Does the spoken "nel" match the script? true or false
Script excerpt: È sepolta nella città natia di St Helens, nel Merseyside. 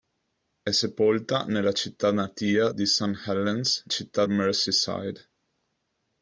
false